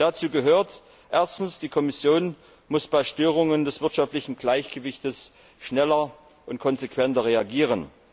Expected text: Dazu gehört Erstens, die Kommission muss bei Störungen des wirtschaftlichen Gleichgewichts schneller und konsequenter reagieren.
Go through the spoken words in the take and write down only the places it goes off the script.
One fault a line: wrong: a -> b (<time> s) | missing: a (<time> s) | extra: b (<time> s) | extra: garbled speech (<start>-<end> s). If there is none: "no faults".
no faults